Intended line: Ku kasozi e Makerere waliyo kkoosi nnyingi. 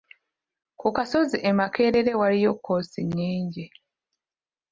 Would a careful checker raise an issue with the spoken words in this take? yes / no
no